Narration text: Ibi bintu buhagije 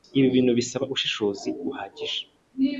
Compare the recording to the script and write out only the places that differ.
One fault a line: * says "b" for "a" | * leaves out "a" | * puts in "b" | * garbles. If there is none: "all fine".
* puts in "bisaba ubushishozi"